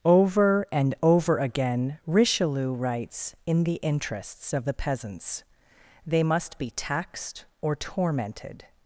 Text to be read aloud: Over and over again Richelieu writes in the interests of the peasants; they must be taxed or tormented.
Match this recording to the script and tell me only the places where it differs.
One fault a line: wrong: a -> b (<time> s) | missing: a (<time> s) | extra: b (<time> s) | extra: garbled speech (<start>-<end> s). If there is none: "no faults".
no faults